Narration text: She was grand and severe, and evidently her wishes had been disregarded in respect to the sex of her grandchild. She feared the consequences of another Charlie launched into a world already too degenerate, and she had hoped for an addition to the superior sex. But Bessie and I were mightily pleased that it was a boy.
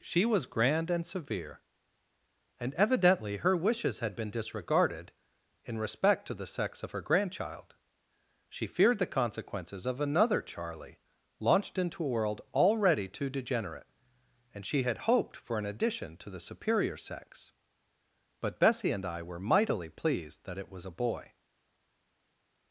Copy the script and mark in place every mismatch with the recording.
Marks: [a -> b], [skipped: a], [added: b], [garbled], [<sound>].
She was grand and severe, and evidently her wishes had been disregarded in respect to the sex of her grandchild. She feared the consequences of another Charlie launched into a world already too degenerate, and she had hoped for an addition to the superior sex. But Bessie and I were mightily pleased that it was a boy.